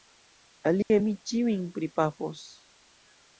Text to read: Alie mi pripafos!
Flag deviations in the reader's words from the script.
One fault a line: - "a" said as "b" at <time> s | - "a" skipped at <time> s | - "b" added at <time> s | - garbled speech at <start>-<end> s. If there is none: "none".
- "ĉiujn" added at 1.3 s